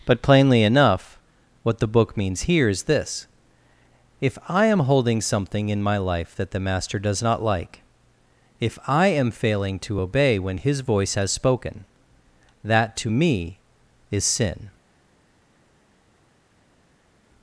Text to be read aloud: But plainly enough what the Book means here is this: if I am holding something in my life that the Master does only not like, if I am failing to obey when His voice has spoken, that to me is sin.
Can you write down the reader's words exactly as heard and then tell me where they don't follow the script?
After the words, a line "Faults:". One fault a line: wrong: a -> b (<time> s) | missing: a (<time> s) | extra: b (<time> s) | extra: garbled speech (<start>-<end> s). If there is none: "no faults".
But plainly enough what the Book means here is this: if I am holding something in my life that the Master does not like, if I am failing to obey when His voice has spoken, that to me is sin.
Faults:
missing: only (7.2 s)